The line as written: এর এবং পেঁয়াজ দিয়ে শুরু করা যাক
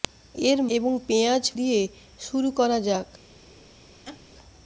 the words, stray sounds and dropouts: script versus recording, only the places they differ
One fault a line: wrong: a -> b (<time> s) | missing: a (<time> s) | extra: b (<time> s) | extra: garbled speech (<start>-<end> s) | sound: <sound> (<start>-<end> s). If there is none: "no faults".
sound: laugh (4.1-4.2 s)